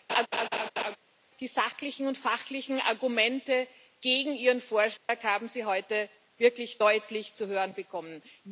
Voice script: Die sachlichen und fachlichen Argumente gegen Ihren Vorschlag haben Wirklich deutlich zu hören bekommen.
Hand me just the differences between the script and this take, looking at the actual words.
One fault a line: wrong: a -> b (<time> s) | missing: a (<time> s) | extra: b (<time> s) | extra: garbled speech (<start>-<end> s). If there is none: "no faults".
extra: Sie heute (5.5 s)